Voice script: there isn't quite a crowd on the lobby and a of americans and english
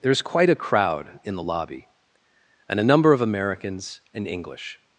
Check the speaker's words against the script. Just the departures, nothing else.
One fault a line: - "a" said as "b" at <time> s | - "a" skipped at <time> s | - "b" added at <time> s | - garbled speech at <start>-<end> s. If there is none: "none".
- "isn't" said as "is" at 0.1 s
- "on" said as "in" at 1.2 s
- "number" added at 2.8 s